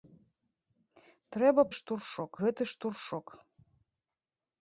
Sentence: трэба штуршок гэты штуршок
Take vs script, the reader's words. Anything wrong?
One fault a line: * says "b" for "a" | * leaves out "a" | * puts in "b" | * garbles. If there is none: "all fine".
all fine